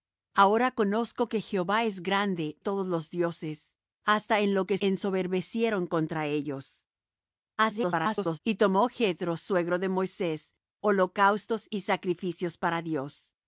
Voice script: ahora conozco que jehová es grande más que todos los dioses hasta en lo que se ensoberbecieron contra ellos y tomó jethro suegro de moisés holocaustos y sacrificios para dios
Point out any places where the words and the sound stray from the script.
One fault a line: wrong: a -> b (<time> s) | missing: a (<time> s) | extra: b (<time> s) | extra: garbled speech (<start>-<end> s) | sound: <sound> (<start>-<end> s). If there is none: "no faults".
missing: más que (2.6 s)
missing: se (4.8 s)
extra: garbled speech (7.6-8.4 s)